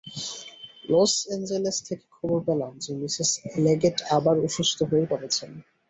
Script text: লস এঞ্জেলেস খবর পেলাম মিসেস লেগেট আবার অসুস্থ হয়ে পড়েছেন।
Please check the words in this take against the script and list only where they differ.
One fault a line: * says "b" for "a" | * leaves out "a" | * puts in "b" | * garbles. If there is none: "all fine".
* puts in "থেকে"
* puts in "যে"